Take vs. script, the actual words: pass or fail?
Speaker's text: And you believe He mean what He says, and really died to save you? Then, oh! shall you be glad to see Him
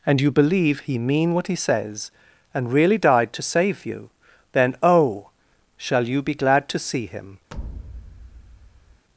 pass